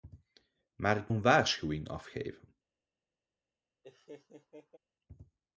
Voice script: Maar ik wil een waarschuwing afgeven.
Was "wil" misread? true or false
true